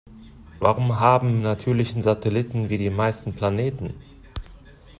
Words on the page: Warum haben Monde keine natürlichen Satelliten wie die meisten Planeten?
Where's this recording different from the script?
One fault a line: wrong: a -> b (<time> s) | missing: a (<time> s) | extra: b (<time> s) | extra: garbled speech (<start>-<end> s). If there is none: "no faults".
missing: Monde keine (1.4 s)